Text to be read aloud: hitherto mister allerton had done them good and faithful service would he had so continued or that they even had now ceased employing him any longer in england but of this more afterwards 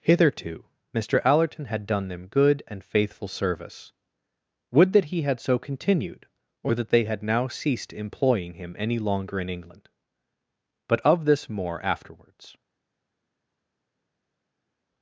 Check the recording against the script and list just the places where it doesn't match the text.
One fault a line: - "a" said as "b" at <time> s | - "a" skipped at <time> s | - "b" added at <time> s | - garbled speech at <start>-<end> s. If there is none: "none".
- "that" added at 4.9 s
- "even" skipped at 7.0 s